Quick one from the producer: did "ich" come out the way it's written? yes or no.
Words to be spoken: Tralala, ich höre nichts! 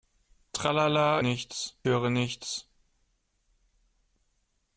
no